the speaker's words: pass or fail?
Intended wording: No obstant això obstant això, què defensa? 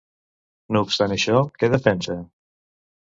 fail